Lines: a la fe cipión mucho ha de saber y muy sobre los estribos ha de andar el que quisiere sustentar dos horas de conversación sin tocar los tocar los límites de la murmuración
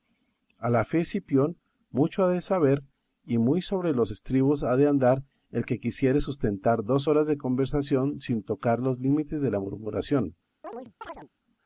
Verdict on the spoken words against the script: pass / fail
fail